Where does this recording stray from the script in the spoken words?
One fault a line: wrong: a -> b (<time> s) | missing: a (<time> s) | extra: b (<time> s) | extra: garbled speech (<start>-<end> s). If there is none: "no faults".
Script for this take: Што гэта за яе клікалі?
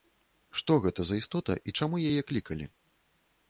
extra: істота і чаму (1.2 s)